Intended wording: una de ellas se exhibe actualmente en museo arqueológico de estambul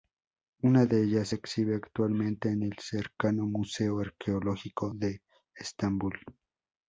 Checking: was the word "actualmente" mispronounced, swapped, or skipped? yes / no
no